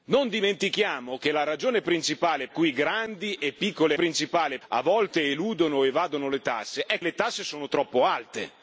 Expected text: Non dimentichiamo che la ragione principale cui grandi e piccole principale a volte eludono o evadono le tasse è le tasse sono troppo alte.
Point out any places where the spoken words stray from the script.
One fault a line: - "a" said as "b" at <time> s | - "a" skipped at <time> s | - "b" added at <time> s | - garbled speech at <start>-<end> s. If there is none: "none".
none